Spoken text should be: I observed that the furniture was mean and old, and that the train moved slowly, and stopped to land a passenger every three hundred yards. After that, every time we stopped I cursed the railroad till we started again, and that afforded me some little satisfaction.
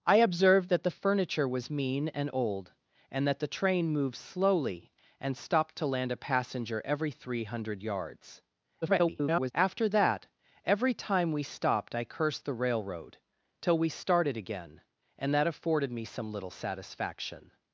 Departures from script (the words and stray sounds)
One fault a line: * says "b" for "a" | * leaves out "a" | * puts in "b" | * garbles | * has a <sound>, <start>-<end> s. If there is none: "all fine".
* garbles